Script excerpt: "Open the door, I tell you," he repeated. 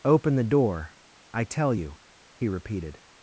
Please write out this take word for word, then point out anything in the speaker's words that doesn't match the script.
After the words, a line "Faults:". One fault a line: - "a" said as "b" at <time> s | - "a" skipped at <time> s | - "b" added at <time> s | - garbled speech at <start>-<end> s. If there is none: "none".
"Open the door, I tell you," he repeated.
Faults:
none